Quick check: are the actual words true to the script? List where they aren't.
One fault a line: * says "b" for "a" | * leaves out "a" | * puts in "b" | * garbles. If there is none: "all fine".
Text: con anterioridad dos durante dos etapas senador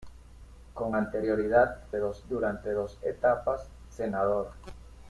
all fine